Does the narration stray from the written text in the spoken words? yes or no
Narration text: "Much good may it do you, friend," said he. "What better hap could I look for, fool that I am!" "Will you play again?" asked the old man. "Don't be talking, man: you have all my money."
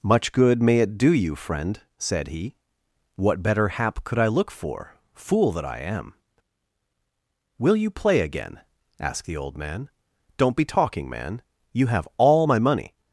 no